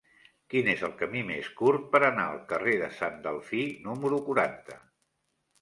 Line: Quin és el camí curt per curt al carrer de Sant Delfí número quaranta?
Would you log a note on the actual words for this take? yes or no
yes